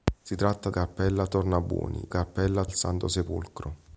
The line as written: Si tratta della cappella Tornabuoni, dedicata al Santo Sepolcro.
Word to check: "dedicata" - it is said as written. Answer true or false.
false